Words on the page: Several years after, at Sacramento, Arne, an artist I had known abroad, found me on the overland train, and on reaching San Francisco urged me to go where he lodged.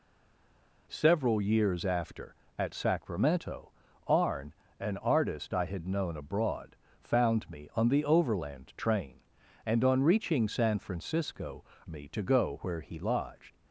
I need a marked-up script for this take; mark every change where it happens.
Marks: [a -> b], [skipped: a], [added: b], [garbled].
Several years after, at Sacramento, Arne, an artist I had known abroad, found me on the overland train, and on reaching San Francisco [skipped: urged] me to go where he lodged.